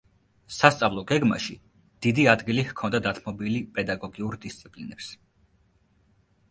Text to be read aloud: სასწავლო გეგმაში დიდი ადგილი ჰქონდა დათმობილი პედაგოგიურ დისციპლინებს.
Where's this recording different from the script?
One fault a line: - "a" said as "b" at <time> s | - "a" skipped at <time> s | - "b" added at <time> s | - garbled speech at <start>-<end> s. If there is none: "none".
none